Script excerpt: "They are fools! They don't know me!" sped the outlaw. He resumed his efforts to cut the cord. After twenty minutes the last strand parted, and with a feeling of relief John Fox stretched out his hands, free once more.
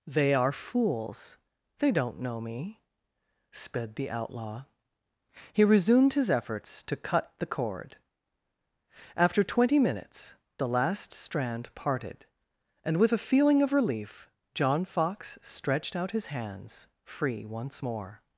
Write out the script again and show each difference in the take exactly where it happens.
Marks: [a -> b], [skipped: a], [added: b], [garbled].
"They are fools! They don't know me!" sped the outlaw. He resumed his efforts to cut the cord. After twenty minutes the last strand parted, and with a feeling of relief John Fox stretched out his hands, free once more.